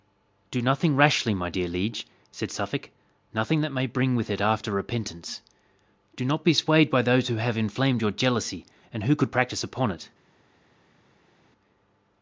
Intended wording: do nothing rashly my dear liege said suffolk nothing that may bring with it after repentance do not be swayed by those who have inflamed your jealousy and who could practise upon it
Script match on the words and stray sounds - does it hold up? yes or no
yes